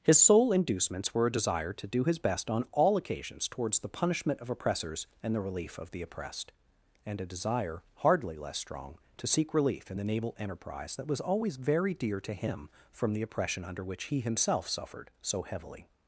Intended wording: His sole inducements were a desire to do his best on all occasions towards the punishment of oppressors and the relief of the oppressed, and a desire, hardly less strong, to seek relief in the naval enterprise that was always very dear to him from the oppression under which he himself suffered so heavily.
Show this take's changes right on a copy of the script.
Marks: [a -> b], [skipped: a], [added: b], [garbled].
His sole inducements were a desire to do his best on all occasions towards the punishment of oppressors and the relief of the oppressed, and a desire, hardly less strong, to seek relief in the naval enterprise that was always very dear to him from the oppression under which he himself suffered so heavily.